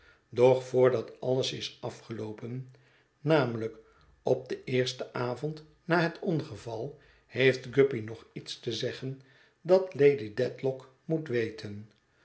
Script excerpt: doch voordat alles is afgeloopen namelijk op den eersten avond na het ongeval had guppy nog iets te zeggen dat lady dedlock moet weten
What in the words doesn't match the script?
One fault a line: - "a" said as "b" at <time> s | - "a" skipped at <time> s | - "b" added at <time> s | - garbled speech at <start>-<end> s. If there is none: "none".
- "had" said as "heeft" at 7.2 s